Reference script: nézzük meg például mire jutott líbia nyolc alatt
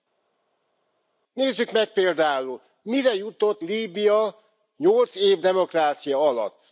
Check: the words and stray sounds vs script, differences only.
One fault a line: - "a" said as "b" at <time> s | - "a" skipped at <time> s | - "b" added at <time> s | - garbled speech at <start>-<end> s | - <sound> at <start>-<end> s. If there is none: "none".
- "év demokrácia" added at 5.1 s